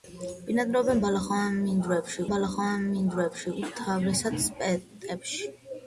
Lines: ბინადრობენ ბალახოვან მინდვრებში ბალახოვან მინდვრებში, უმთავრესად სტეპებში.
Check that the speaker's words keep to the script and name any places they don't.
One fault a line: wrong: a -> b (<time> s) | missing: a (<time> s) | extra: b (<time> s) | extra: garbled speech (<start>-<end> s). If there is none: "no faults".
no faults